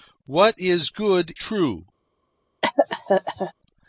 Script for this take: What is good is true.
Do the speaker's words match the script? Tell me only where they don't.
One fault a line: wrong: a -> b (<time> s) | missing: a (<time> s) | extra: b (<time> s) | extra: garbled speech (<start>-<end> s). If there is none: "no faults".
missing: is (1.4 s)